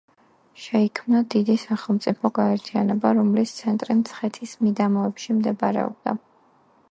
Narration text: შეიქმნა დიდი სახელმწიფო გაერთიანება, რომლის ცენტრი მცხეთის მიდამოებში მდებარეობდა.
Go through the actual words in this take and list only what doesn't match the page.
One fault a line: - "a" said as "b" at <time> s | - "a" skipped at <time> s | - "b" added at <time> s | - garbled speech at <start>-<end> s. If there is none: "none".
none